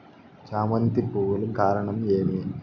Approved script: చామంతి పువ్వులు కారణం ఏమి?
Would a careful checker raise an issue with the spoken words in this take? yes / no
no